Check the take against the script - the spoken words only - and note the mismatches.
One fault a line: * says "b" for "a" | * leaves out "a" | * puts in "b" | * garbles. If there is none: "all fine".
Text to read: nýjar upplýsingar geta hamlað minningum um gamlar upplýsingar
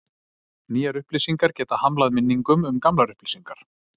all fine